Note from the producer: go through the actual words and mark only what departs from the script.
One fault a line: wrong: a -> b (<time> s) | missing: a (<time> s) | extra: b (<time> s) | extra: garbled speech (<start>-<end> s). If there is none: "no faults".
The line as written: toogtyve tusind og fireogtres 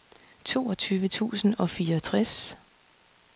no faults